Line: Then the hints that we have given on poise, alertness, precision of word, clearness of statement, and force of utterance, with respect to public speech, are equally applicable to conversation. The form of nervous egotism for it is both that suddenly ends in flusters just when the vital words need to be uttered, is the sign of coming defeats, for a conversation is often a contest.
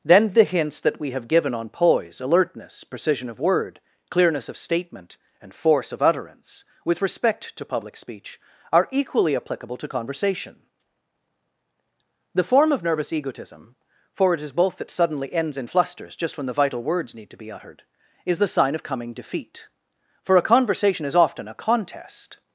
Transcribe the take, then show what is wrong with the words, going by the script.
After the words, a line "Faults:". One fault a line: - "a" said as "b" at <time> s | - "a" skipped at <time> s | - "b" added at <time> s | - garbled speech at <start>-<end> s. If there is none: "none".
Then the hints that we have given on poise, alertness, precision of word, clearness of statement, and force of utterance, with respect to public speech, are equally applicable to conversation. The form of nervous egotism for it is both that suddenly ends in flusters just when the vital words need to be uttered, is the sign of coming defeat, for a conversation is often a contest.
Faults:
- "defeats" said as "defeat" at 19.1 s